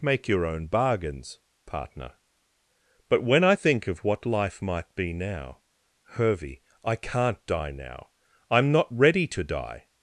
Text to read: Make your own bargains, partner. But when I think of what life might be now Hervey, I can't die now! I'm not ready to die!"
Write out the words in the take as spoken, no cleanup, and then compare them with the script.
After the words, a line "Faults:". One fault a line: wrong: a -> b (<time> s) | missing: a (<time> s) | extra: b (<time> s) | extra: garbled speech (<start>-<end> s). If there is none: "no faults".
Make your own bargains, partner. But when I think of what life might be now Hervey, I can't die now! I'm not ready to die!"
Faults:
no faults